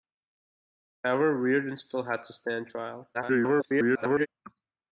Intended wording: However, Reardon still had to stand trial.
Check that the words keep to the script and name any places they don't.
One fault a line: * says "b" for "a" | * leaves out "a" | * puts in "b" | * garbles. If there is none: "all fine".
* garbles